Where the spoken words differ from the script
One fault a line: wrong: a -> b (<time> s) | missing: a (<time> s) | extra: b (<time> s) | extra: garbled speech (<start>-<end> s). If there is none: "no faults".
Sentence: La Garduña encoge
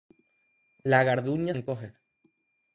no faults